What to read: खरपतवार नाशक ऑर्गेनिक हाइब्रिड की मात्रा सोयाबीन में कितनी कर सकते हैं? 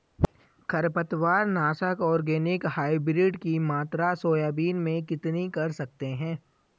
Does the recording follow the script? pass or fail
pass